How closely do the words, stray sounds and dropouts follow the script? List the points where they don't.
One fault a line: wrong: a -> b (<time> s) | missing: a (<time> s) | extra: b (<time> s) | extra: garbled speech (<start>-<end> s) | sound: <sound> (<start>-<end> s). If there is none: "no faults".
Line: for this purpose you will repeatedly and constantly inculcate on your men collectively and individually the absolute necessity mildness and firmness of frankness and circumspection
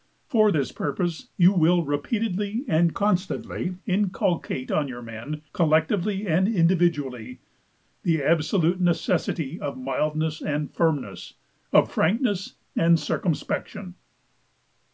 extra: of (9.6 s)